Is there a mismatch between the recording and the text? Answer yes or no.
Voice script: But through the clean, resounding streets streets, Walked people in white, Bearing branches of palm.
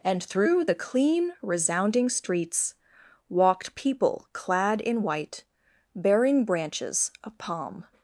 yes